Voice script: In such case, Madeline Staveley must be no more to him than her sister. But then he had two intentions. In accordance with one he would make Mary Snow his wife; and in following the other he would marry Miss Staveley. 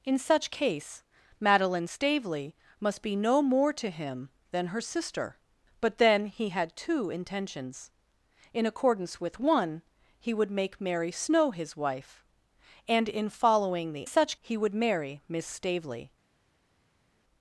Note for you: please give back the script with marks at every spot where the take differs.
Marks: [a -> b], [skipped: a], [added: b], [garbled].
In such case, Madeline Staveley must be no more to him than her sister. But then he had two intentions. In accordance with one he would make Mary Snow his wife; and in following the [other -> such] he would marry Miss Staveley.